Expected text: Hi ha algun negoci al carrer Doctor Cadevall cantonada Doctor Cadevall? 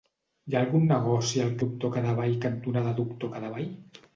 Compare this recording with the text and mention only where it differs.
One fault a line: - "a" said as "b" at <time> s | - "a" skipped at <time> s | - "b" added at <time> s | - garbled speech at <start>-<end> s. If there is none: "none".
- "carrer" skipped at 1.5 s